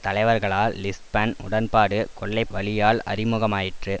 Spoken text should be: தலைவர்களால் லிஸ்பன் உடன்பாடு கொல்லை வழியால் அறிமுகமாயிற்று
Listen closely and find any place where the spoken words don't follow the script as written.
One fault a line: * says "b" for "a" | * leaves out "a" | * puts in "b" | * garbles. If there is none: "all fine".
all fine